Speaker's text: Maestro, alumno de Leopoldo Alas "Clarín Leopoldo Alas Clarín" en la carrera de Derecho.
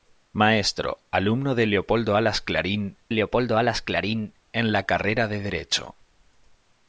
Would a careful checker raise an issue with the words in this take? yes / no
no